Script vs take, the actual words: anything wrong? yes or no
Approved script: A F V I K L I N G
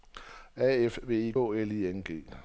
yes